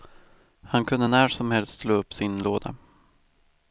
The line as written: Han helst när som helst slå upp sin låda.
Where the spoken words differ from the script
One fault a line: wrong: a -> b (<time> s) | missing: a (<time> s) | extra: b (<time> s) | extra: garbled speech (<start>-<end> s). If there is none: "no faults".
wrong: helst -> kunde (0.8 s)